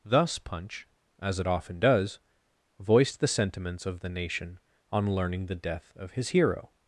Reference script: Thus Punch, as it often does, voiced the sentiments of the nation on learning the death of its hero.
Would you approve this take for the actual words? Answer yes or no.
no